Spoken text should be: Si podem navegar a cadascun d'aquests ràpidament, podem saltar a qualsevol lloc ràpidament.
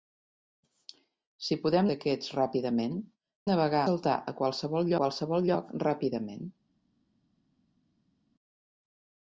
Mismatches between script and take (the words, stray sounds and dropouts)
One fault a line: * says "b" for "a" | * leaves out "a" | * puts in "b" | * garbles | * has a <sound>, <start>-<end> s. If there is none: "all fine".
* leaves out "navegar a cadascun"
* says "navegar" for "podem"
* puts in "qualsevol"